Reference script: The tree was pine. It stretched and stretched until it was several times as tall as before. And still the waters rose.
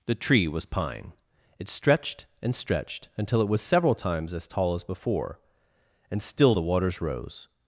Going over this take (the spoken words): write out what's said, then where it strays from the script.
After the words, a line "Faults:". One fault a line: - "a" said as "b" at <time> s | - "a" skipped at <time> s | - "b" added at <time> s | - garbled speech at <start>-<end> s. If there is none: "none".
The tree was pine. It stretched and stretched until it was several times as tall as before. And still the waters rose.
Faults:
none